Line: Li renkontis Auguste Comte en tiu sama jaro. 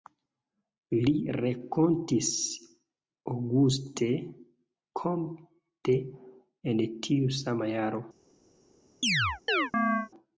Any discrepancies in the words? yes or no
no